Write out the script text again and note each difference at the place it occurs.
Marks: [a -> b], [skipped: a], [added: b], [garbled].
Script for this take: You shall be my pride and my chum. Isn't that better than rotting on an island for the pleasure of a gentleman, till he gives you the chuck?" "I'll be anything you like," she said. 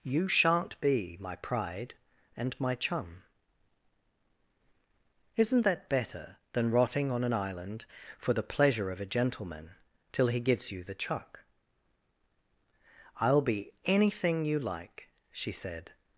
You [shall -> shan't] be my pride and my chum. Isn't that better than rotting on an island for the pleasure of a gentleman, till he gives you the chuck?" "I'll be anything you like," she said.